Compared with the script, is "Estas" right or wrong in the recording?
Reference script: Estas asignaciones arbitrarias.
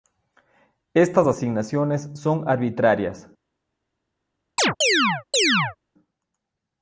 right